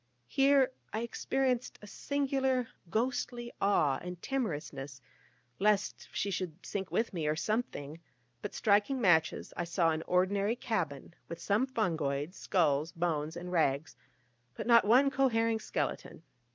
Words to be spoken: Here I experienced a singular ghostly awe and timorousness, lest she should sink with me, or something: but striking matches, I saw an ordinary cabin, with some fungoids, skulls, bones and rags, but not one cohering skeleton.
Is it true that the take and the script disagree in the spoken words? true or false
false